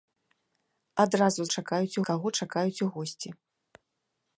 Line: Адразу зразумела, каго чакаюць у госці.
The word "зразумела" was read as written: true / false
false